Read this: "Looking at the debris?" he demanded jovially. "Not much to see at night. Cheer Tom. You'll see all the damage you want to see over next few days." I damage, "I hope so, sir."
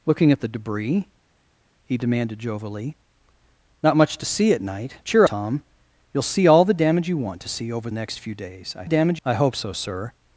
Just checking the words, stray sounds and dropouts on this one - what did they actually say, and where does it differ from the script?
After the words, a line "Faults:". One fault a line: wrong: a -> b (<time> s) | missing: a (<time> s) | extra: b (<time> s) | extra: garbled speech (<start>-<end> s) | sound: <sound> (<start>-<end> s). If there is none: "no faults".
"Looking at the debris?" he demanded jovially. "Not much to see at night. Cheer Tom. You'll see all the damage you want to see over next few days." I damage, "I hope so, sir."
Faults:
no faults